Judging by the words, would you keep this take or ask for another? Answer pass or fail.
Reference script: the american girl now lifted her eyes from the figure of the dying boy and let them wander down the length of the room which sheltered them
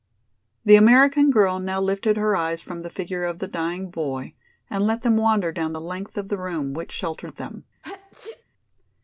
pass